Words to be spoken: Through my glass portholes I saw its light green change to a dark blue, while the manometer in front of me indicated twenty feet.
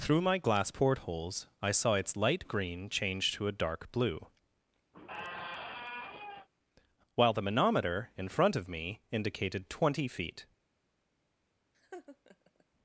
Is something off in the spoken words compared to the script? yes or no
no